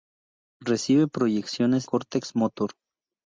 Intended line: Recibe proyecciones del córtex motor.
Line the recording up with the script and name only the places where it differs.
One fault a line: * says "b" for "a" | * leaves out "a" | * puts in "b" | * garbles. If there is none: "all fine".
* leaves out "del"